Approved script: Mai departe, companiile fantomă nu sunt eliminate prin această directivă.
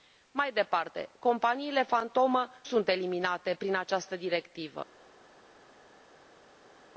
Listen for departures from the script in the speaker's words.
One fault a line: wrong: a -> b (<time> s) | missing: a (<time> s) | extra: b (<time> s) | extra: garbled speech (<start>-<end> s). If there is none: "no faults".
missing: nu (2.5 s)